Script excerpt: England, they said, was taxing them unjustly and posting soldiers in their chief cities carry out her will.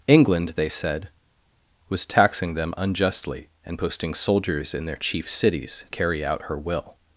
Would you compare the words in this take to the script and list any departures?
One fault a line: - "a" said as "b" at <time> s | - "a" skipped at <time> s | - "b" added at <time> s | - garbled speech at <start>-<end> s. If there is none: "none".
none